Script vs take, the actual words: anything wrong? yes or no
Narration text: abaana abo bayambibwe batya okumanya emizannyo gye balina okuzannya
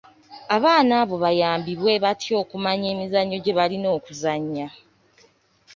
no